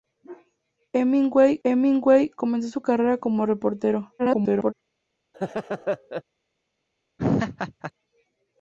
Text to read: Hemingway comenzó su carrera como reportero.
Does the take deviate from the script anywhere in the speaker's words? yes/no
yes